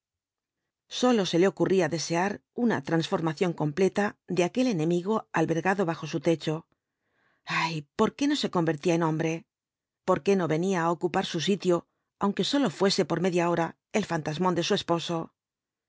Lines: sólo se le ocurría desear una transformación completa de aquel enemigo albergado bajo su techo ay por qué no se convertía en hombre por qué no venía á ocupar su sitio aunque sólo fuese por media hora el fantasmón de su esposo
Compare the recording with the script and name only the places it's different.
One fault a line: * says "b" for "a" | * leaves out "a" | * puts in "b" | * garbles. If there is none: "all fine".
all fine